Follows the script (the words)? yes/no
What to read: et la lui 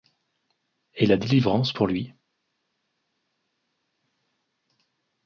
no